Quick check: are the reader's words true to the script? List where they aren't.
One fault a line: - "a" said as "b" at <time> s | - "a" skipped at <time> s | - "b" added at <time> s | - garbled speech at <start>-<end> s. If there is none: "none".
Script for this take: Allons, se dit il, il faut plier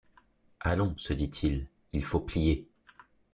none